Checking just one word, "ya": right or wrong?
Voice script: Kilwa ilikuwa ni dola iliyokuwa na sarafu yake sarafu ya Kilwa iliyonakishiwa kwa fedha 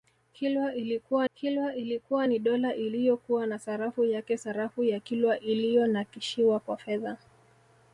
right